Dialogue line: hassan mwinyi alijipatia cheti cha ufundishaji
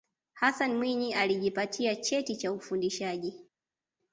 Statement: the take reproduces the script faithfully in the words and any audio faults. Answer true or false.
true